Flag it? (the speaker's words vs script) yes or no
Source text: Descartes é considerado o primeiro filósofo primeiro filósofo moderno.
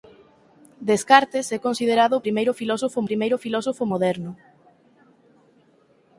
no